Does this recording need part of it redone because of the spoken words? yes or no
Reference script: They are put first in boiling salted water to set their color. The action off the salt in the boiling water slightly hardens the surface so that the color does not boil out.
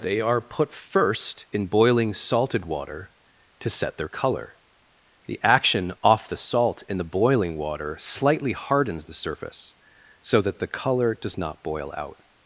no